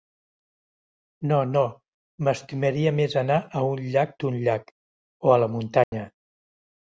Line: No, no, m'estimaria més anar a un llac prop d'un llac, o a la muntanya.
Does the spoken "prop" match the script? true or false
false